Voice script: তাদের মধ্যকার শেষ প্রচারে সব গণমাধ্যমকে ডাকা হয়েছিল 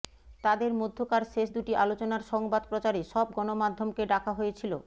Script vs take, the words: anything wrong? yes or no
yes